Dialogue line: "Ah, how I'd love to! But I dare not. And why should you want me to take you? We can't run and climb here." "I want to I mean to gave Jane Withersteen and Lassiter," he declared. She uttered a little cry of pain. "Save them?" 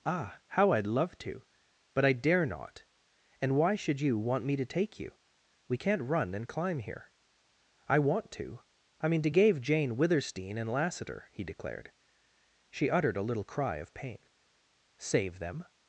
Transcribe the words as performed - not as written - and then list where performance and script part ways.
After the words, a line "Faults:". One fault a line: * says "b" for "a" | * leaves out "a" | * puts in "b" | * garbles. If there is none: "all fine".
"Ah, how I'd love to! But I dare not. And why should you want me to take you? We can't run and climb here." "I want to I mean to gave Jane Withersteen and Lassiter," he declared. She uttered a little cry of pain. "Save them?"
Faults:
all fine